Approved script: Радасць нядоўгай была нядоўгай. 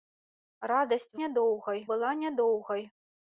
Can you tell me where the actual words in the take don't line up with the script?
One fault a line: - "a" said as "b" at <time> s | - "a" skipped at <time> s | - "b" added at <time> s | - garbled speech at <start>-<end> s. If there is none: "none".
none